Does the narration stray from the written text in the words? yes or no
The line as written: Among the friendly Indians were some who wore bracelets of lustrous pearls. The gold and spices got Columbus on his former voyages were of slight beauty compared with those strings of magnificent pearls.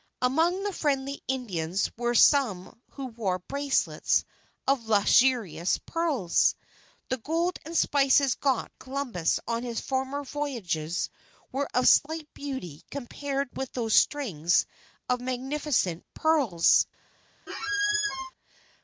no